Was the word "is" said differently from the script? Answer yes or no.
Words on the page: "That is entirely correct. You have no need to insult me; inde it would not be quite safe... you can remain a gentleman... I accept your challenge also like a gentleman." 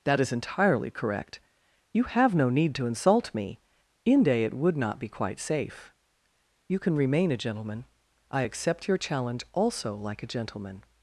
no